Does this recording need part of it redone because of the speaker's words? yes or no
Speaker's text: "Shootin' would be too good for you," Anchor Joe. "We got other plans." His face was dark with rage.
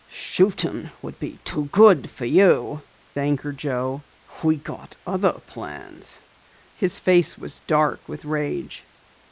no